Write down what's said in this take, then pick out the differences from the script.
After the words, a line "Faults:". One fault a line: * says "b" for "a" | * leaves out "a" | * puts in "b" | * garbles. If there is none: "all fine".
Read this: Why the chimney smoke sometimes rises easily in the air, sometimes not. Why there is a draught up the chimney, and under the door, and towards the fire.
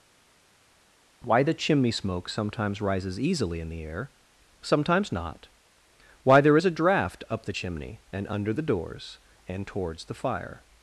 Why the chimney smoke sometimes rises easily in the air, sometimes not. Why there is a draught up the chimney, and under the doors, and towards the fire.
Faults:
* says "doors" for "door"